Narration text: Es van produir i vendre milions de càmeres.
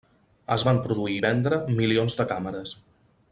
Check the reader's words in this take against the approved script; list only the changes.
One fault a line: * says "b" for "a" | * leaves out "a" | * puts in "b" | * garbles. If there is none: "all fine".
all fine